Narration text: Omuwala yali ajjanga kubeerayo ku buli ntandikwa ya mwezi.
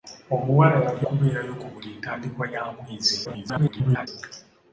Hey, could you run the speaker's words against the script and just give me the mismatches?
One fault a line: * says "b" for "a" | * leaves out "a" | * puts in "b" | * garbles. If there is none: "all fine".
* leaves out "ajjanga"
* garbles